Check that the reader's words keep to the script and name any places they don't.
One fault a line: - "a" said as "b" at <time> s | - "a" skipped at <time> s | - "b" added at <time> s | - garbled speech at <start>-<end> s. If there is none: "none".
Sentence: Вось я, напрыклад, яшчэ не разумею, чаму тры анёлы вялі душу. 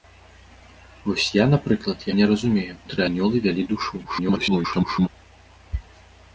- "яшчэ" skipped at 2.1 s
- "чаму" skipped at 2.7 s
- garbled speech at 4.0-5.1 s